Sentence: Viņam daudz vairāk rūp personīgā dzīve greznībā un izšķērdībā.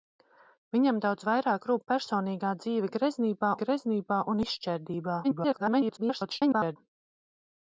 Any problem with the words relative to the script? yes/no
yes